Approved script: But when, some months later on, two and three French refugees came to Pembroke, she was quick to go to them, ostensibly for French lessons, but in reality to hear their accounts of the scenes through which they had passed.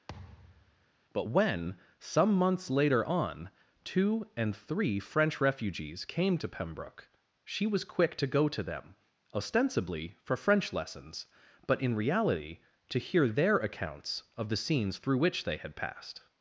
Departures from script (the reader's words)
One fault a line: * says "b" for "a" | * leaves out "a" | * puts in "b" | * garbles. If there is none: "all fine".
all fine